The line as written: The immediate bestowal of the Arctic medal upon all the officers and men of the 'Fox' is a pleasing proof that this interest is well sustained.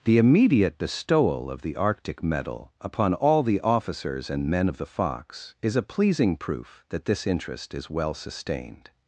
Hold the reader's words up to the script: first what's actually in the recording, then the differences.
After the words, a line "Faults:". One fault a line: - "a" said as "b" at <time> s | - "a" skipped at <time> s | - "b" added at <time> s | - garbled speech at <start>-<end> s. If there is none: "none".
The immediate bestowal of the Arctic medal upon all the officers and men of the 'Fox' is a pleasing proof that this interest is well sustained.
Faults:
none